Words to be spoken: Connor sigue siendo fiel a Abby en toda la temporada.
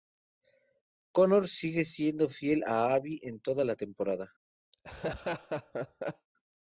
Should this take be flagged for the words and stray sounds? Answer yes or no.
yes